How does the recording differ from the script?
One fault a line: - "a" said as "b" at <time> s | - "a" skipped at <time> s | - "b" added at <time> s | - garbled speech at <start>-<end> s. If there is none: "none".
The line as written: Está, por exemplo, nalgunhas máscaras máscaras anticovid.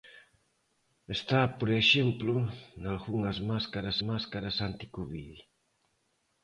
none